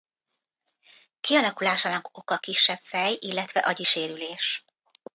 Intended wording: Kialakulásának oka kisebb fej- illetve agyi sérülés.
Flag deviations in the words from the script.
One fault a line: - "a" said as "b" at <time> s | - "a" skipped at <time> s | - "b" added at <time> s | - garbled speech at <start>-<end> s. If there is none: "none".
none